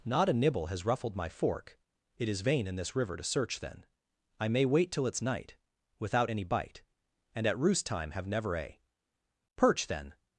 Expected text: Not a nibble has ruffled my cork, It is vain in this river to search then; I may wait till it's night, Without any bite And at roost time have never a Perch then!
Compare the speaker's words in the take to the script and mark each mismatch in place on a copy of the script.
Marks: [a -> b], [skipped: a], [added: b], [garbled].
Not a nibble has ruffled my [cork, -> fork] It is vain in this river to search then; I may wait till it's night, Without any bite And at roost time have never a Perch then!